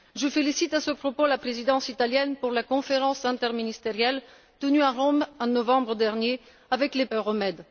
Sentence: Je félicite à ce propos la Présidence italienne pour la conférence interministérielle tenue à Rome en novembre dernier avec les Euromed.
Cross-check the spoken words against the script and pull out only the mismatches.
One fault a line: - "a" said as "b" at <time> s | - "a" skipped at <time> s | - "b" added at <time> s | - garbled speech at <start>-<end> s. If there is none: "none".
none